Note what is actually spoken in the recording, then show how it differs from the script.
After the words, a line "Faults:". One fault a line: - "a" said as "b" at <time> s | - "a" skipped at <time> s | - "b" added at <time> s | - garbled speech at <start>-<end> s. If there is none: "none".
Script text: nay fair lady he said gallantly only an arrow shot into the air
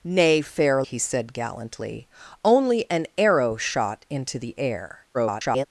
nay fair he said gallantly only an arrow shot into the air [garbled]
Faults:
- "lady" skipped at 0.8 s
- garbled speech at 5.1-5.7 s